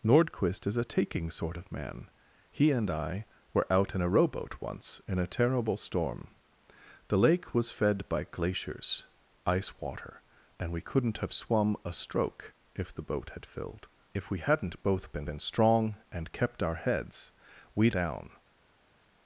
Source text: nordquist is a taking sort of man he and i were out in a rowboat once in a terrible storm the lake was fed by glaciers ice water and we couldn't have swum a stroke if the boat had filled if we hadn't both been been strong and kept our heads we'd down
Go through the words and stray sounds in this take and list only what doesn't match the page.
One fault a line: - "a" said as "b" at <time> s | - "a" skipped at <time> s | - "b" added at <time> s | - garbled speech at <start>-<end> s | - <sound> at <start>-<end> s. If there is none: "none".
none